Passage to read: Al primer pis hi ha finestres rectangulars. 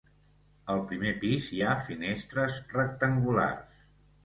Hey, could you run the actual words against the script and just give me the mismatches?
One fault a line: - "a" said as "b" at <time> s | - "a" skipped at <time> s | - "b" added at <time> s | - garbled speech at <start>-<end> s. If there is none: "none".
none